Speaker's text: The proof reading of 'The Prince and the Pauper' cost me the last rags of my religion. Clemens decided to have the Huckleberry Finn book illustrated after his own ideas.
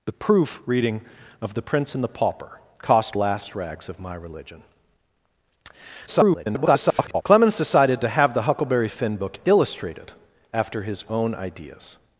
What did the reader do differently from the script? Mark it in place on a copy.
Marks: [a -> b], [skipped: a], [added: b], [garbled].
The proof reading of 'The Prince and the Pauper' cost [skipped: me the] last rags of my religion. [garbled] Clemens decided to have the Huckleberry Finn book illustrated after his own ideas.